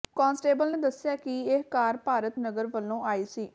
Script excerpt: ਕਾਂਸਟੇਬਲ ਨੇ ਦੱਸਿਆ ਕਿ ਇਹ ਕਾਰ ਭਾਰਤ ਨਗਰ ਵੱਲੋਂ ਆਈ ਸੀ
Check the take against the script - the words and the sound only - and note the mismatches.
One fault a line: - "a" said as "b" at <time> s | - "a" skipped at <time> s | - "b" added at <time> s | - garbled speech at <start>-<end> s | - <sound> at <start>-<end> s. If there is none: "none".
none